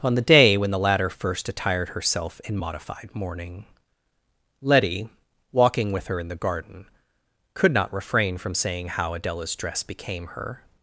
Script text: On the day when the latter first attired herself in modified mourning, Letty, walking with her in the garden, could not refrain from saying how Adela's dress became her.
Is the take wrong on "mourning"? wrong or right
right